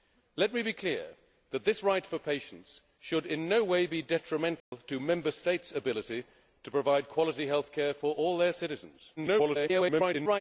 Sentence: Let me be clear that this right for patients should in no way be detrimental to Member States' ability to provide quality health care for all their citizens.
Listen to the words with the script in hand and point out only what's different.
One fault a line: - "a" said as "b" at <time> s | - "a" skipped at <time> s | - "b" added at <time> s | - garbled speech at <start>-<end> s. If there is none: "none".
- garbled speech at 9.2-10.4 s